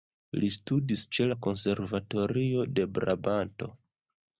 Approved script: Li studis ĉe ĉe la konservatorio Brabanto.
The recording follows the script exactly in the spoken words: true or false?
false